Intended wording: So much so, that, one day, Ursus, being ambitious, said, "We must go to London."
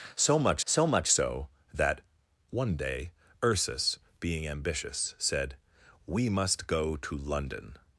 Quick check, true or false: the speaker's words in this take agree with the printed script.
false